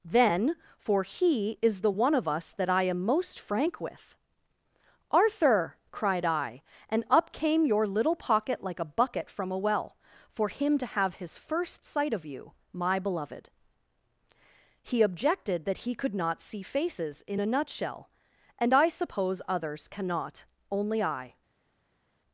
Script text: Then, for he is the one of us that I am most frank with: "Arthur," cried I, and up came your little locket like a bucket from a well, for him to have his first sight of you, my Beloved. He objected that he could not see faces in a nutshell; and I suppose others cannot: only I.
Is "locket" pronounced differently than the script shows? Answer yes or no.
yes